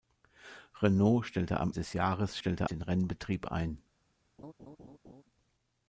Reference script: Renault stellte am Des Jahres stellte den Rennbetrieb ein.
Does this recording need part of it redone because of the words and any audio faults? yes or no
yes